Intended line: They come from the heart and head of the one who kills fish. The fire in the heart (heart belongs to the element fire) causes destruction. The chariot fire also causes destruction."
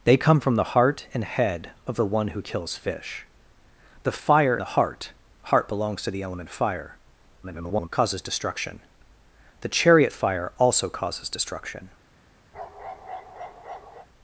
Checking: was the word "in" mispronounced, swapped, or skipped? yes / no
yes